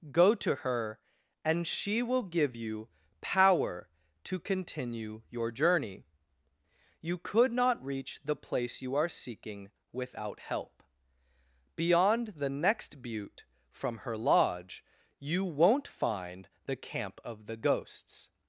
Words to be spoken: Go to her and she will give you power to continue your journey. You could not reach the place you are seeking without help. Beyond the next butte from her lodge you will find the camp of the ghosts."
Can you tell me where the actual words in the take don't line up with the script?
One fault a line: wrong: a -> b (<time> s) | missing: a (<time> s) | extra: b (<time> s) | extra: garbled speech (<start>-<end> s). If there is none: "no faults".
wrong: will -> won't (15.4 s)